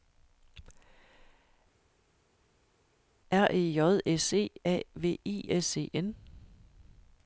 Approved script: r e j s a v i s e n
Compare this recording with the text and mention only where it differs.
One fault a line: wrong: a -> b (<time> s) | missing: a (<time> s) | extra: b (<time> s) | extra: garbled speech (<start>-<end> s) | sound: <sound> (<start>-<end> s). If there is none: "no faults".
extra: e (4.3 s)